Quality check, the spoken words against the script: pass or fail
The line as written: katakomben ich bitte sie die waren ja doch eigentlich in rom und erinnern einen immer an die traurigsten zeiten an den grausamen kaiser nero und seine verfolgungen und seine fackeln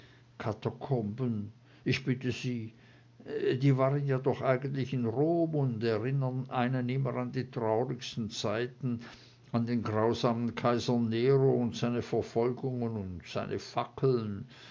pass